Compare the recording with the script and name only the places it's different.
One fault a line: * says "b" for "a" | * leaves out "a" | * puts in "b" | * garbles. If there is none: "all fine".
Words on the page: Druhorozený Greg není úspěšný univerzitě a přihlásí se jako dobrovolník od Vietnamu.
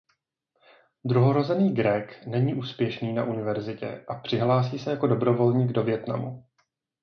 * puts in "na"
* says "do" for "od"